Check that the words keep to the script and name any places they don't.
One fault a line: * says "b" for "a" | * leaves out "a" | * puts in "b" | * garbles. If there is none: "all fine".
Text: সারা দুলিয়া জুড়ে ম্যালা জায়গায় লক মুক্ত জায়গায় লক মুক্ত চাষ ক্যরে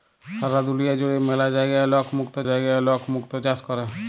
all fine